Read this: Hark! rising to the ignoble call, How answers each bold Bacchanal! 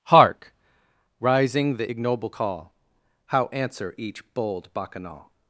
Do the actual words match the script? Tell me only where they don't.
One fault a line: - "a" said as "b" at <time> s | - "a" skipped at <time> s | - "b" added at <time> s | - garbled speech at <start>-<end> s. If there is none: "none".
- "to" skipped at 1.8 s
- "answers" said as "answer" at 3.5 s